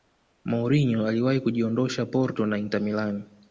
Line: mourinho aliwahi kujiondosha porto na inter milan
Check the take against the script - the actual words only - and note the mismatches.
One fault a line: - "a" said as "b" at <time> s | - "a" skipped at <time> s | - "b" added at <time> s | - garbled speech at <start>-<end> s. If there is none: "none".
none